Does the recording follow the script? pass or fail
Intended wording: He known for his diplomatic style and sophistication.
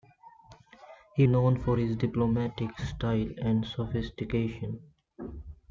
pass